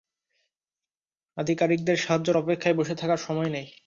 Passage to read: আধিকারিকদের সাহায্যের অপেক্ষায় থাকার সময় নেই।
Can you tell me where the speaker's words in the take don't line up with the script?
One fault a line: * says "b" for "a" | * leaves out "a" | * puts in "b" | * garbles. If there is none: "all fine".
* puts in "বসে"